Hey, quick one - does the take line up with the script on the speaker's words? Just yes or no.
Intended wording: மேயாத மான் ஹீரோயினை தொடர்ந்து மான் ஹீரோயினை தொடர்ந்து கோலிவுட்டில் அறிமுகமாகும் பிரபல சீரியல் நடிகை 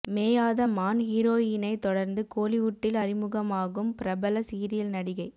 no